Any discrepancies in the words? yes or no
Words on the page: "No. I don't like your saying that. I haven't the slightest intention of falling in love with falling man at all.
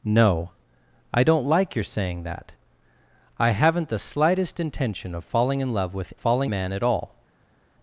no